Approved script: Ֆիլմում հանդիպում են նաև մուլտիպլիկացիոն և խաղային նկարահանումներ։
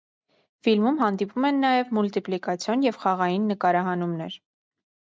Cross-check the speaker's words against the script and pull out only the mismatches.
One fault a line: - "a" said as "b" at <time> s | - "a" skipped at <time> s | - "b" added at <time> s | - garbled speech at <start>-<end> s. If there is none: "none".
none